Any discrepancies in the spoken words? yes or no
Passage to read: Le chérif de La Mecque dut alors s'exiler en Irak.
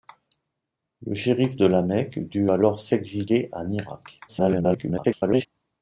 yes